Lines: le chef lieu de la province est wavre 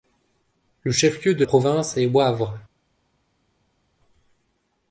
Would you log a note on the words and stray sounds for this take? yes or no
yes